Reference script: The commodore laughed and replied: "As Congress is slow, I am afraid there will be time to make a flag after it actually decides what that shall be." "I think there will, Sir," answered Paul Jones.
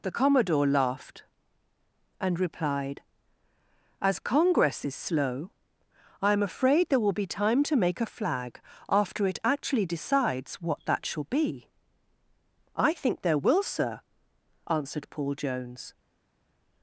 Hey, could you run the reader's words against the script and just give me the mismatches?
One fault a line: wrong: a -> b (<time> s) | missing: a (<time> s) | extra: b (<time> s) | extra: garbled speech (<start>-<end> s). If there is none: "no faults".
no faults